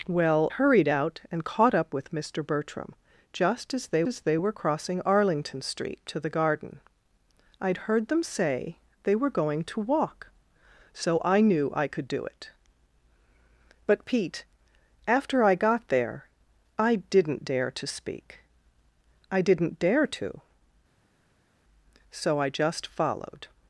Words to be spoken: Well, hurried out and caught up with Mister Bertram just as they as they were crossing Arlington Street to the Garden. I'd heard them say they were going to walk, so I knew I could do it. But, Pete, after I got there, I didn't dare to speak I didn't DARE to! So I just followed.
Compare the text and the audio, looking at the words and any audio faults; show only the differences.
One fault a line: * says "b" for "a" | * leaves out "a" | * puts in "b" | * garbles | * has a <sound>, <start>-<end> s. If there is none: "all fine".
all fine